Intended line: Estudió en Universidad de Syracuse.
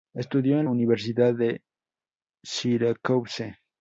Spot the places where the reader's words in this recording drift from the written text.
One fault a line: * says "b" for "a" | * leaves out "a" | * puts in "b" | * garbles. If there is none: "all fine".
all fine